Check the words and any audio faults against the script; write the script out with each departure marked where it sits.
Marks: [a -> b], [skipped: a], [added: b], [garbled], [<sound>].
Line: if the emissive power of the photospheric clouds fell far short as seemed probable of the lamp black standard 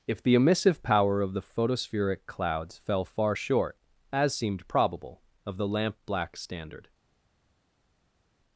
if the emissive power of the photospheric clouds fell far short as seemed probable of the lamp black standard